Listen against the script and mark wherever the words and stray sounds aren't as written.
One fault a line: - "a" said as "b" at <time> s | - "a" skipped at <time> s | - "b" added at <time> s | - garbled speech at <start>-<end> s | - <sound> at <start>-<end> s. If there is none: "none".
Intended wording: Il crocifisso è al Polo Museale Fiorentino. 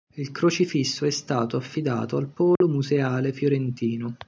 - "stato affidato" added at 1.1 s
- dropout at 2.6-2.6 s